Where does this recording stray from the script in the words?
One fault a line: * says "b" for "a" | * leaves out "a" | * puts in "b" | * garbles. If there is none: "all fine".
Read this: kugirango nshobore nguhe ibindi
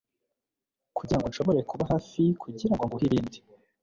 * puts in "kuba hafi kugirango"